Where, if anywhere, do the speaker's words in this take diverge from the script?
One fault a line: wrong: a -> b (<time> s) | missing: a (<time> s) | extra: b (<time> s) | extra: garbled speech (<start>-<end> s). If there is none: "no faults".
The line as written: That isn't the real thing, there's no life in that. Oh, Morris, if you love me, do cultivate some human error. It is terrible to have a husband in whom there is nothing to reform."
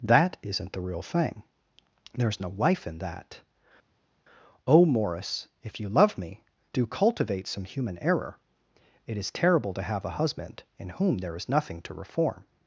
no faults